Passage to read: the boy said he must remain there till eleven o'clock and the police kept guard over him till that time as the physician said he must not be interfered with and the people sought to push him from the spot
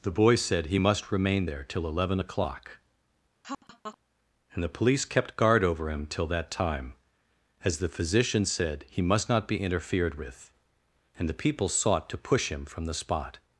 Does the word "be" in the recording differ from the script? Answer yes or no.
no